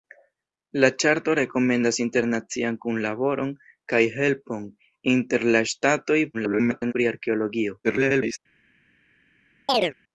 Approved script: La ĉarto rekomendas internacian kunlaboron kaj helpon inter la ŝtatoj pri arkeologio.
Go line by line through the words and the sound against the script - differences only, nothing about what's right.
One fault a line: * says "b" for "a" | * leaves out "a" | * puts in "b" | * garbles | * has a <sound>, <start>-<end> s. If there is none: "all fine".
* garbles
* garbles
* has a chirp, 9.7-9.9 s